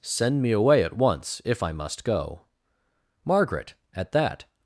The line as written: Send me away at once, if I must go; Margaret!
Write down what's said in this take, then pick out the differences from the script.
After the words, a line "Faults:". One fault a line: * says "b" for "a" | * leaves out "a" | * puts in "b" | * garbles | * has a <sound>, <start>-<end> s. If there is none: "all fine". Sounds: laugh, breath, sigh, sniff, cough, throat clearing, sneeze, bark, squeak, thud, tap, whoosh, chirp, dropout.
Send me away at once, if I must go; Margaret! At that
Faults:
* puts in "At that"